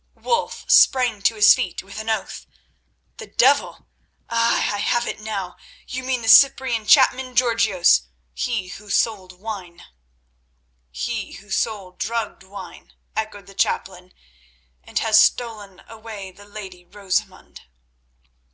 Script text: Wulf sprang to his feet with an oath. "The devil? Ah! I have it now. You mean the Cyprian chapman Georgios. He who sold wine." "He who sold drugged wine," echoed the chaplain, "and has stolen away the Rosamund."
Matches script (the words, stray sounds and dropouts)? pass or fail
fail